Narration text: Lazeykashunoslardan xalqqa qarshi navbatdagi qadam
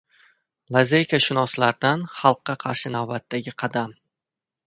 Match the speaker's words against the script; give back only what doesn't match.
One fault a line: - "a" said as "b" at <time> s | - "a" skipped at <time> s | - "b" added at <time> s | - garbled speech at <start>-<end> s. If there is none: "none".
none